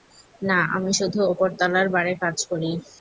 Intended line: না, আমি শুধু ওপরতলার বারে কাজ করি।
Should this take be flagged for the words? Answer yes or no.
no